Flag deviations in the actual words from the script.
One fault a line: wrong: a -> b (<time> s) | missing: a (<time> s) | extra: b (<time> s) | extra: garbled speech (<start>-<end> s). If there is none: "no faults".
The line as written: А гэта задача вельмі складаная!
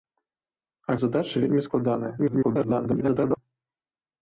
missing: гэта (0.9 s)
extra: garbled speech (2.2-3.4 s)